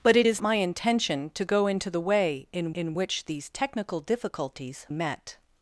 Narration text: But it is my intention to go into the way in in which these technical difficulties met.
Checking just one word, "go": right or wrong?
right